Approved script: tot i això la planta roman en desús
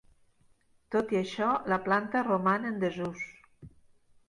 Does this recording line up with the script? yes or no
yes